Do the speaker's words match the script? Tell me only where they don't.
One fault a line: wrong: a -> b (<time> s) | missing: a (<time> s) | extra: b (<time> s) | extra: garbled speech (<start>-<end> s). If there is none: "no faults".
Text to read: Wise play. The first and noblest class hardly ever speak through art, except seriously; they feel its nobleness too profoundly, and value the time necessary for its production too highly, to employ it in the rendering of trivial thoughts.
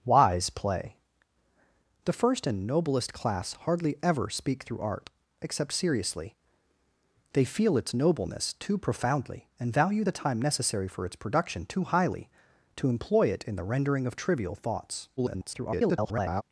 extra: garbled speech (15.2-16.4 s)